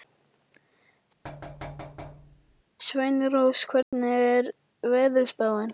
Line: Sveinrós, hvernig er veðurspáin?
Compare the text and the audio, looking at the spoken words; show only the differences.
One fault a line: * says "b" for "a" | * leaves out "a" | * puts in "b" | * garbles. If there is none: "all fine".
all fine